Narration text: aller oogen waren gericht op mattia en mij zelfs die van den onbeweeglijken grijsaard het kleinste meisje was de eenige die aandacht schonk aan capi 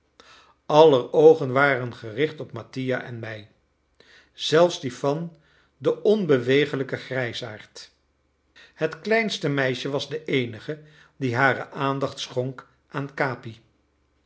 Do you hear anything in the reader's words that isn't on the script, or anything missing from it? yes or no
yes